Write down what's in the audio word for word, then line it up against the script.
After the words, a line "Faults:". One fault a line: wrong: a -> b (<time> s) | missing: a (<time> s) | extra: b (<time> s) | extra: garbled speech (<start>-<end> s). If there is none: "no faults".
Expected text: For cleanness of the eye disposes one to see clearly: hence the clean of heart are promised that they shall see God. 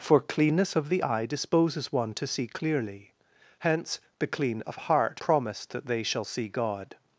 For cleanness of the eye disposes one to see clearly: hence the clean of heart promised that they shall see God.
Faults:
missing: are (5.2 s)